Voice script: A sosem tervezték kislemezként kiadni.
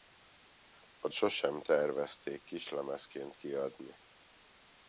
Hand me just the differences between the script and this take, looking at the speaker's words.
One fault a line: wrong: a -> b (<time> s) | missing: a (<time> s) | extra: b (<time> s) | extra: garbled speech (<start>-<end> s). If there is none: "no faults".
no faults